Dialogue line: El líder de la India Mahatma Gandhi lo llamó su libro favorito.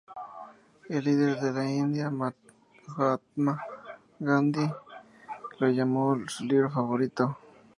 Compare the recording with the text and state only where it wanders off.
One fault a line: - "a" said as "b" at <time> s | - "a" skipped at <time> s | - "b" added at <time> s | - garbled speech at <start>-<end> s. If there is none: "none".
none